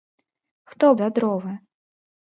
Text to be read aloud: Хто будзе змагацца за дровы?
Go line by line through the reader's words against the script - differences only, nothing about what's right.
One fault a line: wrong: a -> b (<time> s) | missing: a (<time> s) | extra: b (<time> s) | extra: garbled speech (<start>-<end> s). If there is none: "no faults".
missing: будзе змагацца (0.9 s)